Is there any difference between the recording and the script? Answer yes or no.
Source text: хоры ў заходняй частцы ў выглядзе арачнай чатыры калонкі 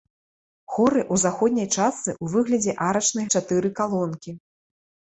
no